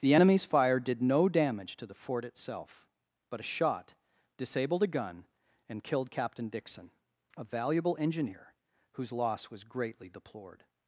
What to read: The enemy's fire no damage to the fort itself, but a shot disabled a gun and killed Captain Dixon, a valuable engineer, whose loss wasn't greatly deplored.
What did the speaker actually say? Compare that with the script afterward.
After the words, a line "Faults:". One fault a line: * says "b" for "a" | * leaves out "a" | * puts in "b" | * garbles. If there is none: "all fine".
The enemy's fire did no damage to the fort itself, but a shot disabled a gun and killed Captain Dixon, a valuable engineer, whose loss was greatly deplored.
Faults:
* puts in "did"
* says "was" for "wasn't"